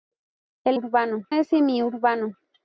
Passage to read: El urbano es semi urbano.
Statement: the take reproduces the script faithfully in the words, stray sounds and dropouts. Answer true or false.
true